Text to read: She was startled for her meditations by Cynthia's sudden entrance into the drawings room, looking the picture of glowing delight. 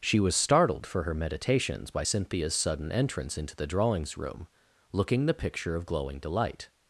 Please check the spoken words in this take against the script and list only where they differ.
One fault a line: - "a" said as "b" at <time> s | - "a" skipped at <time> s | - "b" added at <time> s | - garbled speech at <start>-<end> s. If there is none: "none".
none